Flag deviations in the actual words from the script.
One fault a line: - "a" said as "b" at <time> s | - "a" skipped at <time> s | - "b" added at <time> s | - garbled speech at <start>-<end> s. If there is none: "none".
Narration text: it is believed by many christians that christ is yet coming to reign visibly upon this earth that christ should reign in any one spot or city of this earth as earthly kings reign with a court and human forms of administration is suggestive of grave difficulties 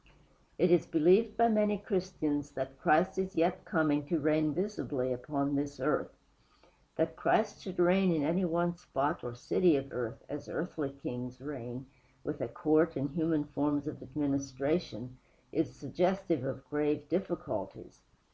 - "this" skipped at 9.9 s